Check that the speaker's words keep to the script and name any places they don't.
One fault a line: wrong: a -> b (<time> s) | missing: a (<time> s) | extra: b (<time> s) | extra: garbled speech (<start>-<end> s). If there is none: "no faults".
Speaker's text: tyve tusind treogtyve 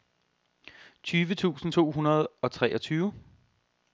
extra: to hundrede og (1.7 s)